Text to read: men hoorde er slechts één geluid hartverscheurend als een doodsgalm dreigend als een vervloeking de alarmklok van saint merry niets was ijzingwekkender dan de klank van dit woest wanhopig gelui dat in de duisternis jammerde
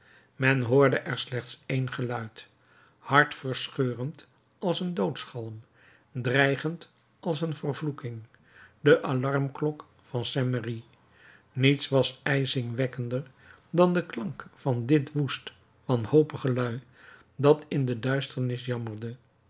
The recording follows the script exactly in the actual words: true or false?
true